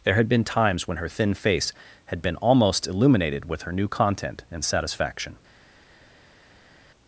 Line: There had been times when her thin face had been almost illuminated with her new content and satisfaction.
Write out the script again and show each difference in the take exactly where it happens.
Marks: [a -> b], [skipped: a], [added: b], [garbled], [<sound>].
There had been times when her thin face had been almost illuminated with her new content and satisfaction.